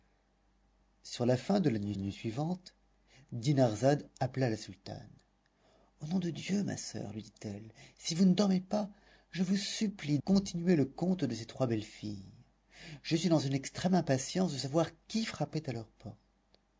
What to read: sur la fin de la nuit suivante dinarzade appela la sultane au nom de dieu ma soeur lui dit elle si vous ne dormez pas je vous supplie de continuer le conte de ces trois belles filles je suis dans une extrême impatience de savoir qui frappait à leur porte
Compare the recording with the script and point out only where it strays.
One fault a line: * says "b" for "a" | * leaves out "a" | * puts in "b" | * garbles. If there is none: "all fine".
* puts in "nuit"
* leaves out "de"